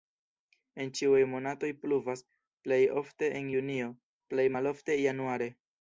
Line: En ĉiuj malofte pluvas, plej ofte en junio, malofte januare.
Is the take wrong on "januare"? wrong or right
right